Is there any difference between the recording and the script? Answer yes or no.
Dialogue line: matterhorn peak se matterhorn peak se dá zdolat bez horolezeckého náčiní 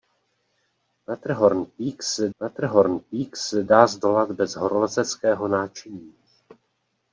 no